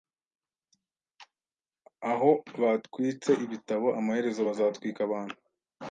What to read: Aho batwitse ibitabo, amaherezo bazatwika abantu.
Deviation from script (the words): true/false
false